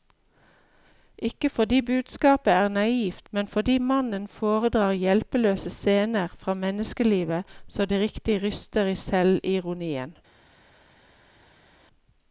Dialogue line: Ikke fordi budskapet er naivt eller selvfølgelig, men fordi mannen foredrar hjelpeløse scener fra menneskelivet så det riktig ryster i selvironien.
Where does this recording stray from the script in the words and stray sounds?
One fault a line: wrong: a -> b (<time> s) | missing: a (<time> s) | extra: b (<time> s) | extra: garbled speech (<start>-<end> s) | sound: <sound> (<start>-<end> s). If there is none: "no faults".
missing: eller selvfølgelig (3.3 s)